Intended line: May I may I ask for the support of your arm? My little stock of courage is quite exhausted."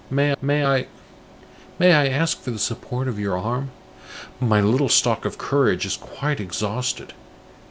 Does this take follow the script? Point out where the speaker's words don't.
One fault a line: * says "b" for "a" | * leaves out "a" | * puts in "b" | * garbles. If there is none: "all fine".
* puts in "may"